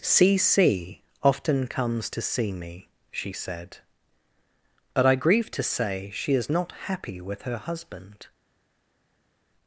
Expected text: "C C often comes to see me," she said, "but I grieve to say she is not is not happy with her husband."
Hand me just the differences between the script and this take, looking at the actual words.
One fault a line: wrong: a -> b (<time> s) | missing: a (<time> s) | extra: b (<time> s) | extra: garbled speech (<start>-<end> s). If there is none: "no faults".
missing: is not (6.7 s)